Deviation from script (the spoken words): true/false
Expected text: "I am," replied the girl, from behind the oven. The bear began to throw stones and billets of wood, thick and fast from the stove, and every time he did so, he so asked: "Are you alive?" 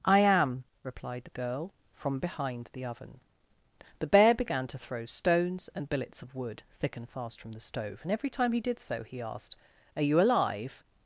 true